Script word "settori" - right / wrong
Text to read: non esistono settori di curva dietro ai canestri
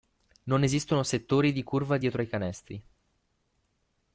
right